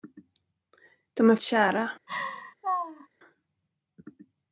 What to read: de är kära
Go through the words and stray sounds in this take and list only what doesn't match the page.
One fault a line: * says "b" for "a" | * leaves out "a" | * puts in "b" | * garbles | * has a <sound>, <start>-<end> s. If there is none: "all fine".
* has a laugh, 2.1-3.1 s